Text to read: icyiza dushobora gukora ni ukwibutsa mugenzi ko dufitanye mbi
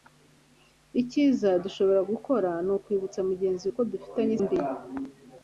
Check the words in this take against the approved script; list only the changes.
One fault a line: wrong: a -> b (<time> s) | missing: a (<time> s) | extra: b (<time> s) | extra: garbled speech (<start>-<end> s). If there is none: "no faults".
no faults